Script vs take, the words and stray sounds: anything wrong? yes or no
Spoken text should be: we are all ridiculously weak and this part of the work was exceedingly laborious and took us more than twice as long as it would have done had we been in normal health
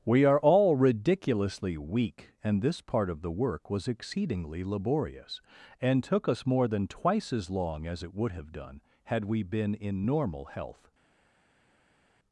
no